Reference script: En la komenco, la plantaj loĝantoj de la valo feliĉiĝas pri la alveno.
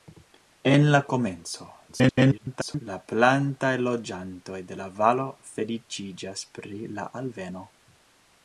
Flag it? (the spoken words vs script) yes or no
yes